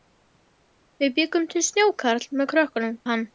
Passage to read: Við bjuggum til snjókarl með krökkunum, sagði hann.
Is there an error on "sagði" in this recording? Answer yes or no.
yes